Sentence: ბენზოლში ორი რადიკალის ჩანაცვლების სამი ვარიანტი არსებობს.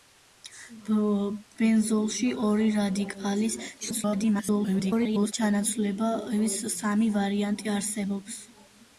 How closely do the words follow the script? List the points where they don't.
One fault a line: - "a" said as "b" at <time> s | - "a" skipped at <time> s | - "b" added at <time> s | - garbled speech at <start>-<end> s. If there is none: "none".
- garbled speech at 3.8-5.3 s